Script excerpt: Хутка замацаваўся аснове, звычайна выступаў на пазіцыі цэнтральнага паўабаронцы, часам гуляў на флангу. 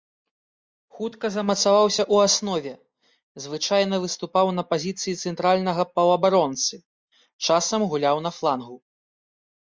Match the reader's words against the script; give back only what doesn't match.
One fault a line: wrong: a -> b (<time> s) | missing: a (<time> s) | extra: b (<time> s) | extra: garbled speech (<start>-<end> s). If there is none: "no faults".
extra: ў (2.0 s)